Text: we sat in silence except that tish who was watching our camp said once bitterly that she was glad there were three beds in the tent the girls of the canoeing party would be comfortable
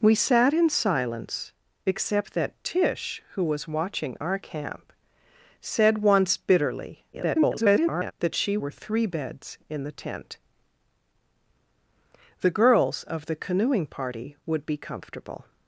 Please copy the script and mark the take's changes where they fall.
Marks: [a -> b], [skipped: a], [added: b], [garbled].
we sat in silence except that tish who was watching our camp said once bitterly [garbled] that she [skipped: was glad there] were three beds in the tent the girls of the canoeing party would be comfortable